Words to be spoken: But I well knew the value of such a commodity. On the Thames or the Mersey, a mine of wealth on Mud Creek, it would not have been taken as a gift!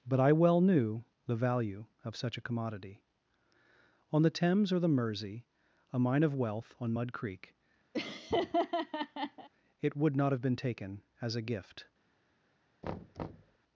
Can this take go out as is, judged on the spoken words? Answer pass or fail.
pass